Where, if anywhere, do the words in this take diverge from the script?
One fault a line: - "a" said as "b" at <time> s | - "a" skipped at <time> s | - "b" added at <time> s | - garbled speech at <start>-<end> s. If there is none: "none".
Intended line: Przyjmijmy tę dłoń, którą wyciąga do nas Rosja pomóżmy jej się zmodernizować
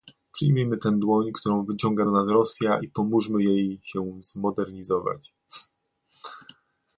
- "i" added at 2.8 s